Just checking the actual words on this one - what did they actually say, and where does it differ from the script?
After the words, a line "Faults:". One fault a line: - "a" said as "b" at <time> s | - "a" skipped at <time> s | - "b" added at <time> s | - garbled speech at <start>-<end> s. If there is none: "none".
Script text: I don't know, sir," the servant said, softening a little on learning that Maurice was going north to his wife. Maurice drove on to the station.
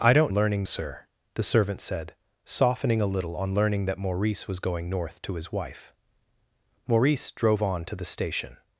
I don't learning, sir," the servant said, softening a little on learning that Maurice was going north to his wife. Maurice drove on to the station.
Faults:
- "know" said as "learning" at 0.3 s